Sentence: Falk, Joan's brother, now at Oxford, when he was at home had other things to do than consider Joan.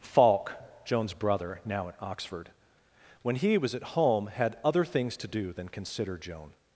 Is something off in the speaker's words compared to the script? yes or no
no